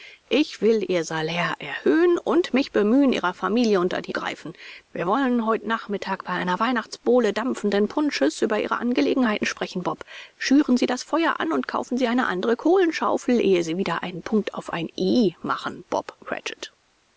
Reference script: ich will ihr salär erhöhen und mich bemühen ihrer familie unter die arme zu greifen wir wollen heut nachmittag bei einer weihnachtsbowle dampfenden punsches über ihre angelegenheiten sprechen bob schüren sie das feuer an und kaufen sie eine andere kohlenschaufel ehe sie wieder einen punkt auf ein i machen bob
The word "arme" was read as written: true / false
false